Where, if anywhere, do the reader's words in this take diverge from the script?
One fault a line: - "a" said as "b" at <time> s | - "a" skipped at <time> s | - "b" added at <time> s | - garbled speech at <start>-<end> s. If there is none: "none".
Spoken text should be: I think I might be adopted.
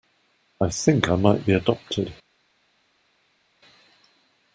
none